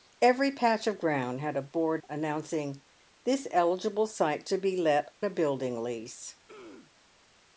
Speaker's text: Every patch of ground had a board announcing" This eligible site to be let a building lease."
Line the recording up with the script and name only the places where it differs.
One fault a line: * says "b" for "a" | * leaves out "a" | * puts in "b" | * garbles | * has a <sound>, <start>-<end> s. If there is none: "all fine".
* has a throat clearing, 6.5-6.9 s